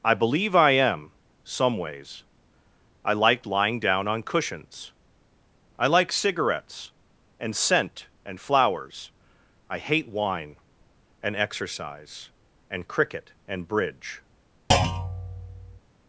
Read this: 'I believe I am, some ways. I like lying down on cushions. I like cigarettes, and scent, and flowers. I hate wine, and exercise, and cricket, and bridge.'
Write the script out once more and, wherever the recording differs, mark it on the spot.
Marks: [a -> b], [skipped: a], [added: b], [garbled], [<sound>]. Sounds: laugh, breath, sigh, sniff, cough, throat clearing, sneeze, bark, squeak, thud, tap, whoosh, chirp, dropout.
'I believe I am, some ways. I like lying down on cushions. I like cigarettes, and scent, and flowers. I hate wine, and exercise, and cricket, and bridge.' [thud]